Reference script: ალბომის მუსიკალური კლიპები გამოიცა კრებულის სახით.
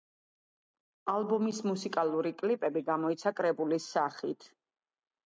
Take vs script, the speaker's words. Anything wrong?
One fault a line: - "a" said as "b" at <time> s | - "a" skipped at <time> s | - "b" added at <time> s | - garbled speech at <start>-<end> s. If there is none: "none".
none